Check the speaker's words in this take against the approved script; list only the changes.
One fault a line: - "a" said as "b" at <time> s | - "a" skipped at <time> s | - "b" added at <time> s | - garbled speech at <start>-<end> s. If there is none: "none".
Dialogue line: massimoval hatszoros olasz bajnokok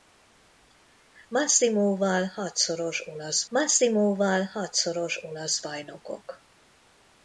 - "massimoval hatszoros olasz" added at 3.5 s